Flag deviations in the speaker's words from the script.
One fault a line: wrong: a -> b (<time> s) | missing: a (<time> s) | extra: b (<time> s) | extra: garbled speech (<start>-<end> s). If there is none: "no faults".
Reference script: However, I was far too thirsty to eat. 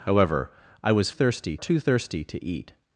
wrong: far -> thirsty (1.1 s)